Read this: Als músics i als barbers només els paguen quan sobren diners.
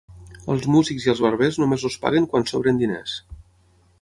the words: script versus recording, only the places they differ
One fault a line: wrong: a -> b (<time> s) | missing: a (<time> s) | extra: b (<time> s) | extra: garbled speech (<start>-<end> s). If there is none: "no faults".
no faults